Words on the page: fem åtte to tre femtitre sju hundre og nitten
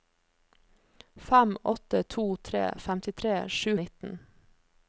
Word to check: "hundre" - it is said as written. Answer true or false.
false